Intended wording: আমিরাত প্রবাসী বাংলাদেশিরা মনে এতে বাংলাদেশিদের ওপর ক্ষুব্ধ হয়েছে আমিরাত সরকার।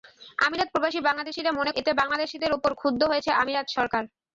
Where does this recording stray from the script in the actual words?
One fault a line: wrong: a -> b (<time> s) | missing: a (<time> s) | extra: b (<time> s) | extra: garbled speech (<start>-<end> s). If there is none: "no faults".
no faults